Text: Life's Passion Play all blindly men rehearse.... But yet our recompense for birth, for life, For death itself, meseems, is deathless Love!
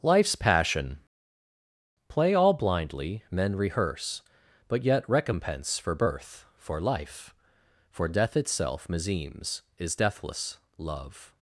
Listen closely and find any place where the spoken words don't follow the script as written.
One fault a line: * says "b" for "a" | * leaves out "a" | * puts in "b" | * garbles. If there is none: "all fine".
* leaves out "our"